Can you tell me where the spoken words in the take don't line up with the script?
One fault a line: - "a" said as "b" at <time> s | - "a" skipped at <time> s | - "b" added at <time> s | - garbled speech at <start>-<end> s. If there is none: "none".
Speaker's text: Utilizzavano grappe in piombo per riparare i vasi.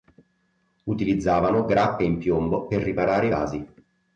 none